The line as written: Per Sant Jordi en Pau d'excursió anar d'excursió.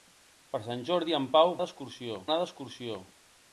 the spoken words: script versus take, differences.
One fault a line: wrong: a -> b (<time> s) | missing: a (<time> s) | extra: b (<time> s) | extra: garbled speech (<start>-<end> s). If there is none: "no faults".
no faults